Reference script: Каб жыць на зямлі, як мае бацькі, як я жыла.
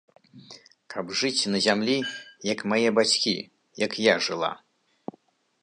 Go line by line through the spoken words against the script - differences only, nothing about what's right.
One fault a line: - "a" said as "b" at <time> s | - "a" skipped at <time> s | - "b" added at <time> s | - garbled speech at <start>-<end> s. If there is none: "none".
none